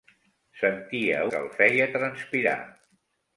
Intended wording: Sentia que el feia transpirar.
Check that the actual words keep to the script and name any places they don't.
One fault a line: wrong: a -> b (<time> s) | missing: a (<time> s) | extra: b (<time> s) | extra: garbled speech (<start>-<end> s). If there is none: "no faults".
no faults